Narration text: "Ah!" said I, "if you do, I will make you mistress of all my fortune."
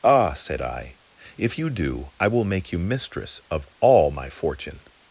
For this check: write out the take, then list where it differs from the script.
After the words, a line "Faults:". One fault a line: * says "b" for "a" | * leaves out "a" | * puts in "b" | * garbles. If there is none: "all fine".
"Ah!" said I, "if you do, I will make you mistress of all my fortune."
Faults:
all fine